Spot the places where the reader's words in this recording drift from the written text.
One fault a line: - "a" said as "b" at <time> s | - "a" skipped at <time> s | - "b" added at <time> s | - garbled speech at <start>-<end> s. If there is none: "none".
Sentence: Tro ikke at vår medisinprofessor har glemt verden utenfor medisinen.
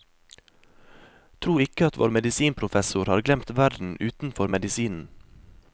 none